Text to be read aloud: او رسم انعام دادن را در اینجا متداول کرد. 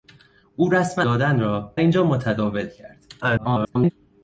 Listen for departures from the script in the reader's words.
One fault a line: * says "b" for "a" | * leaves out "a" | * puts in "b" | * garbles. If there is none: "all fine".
* leaves out "انعام"
* leaves out "در"
* garbles